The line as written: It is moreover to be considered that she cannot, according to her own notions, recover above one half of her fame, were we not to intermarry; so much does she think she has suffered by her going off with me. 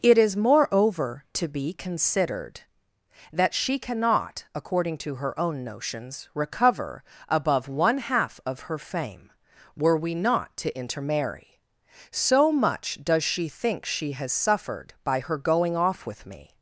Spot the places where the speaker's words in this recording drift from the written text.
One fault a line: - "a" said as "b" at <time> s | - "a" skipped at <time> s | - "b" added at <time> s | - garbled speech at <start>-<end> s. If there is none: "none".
none